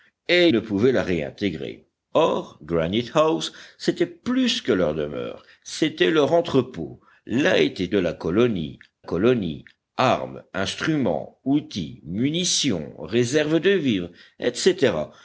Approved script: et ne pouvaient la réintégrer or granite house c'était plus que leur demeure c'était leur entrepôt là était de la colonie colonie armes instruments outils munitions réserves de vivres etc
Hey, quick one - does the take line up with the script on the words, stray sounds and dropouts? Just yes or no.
yes